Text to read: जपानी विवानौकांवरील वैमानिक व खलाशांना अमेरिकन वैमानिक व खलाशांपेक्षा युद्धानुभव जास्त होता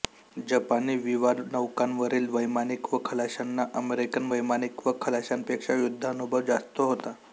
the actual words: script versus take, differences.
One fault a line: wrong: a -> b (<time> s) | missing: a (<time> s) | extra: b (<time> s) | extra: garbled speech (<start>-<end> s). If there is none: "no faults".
no faults